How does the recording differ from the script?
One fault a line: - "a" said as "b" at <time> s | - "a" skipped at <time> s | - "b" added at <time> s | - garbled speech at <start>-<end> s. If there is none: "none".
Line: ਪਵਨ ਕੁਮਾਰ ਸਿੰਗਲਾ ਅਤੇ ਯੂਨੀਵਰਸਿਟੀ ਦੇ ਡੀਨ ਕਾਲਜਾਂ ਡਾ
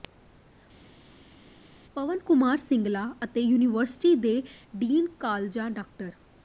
none